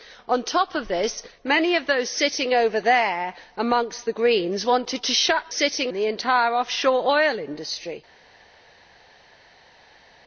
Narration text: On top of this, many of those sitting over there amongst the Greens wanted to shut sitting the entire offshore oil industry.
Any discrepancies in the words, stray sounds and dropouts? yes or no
no